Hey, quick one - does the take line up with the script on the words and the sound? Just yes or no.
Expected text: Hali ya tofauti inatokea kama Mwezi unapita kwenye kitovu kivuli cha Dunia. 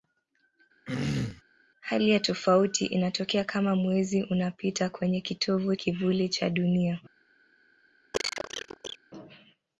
no